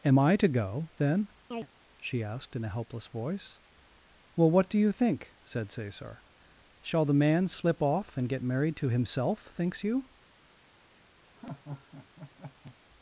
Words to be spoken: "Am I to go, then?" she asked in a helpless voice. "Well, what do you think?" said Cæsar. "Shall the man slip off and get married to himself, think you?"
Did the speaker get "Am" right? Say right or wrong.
right